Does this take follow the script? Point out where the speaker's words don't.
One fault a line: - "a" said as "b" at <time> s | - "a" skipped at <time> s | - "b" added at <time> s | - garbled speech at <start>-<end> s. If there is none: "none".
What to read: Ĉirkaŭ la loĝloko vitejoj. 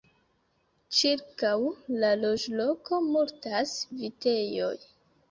- "multas" added at 3.1 s